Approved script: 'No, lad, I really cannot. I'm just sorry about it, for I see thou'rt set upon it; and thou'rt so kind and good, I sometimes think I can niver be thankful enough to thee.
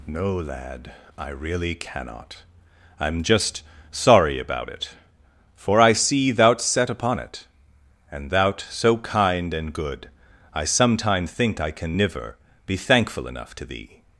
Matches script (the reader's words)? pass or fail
fail